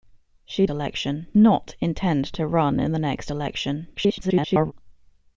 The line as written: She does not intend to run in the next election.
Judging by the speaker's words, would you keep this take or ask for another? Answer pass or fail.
fail